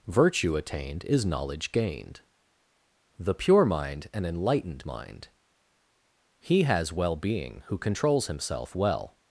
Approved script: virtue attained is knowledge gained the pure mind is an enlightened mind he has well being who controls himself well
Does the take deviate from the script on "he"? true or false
false